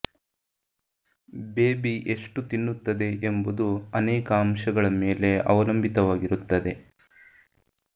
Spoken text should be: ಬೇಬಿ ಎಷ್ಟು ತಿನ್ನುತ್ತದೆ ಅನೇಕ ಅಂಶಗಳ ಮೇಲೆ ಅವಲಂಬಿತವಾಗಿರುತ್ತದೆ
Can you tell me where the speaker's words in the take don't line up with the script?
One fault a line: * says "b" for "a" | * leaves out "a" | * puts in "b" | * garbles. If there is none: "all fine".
* puts in "ಎಂಬುದು"